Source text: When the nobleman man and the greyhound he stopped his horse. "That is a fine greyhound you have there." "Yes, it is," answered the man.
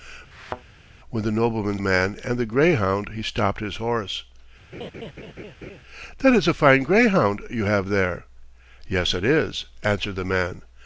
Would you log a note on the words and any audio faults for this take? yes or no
yes